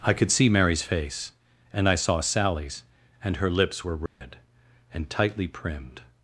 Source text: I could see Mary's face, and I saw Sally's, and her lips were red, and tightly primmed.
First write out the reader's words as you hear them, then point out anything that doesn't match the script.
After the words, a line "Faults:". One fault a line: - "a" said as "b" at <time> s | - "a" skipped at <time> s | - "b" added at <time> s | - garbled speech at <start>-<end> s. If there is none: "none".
I could see Mary's face, and I saw Sally's, and her lips were red, and tightly primmed.
Faults:
none